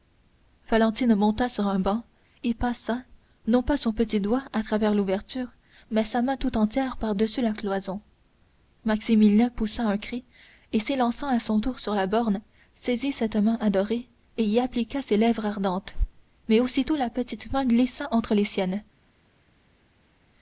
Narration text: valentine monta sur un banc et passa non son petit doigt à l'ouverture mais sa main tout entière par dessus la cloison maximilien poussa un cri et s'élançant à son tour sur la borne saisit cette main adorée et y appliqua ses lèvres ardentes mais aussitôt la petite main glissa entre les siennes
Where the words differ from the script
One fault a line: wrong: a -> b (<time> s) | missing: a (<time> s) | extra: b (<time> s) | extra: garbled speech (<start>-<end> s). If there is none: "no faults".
extra: pas (3.6 s)
extra: travers (4.6 s)